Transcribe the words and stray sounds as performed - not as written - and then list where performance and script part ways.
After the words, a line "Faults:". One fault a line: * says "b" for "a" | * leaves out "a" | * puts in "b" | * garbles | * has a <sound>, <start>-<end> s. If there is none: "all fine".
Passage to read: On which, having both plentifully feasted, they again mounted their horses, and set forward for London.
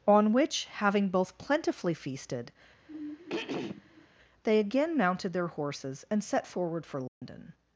On which, having both plentifully feasted, they again mounted their horses, and set forward for London.
Faults:
* has a throat clearing, 2.9-4.1 s
* has a dropout, 7.1-7.2 s